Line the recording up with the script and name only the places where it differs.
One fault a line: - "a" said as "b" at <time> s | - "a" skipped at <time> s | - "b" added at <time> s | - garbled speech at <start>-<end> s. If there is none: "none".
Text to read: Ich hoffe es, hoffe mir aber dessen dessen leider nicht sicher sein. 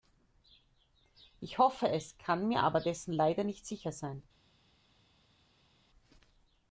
- "hoffe" said as "kann" at 2.2 s
- "dessen" skipped at 3.1 s